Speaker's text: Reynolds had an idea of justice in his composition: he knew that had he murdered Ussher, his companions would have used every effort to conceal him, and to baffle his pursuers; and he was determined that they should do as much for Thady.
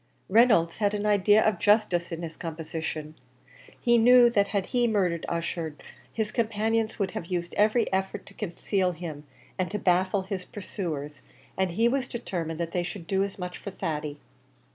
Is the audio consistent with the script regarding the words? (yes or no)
yes